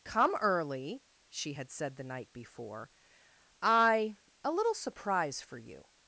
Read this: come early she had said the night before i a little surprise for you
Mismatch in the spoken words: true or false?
false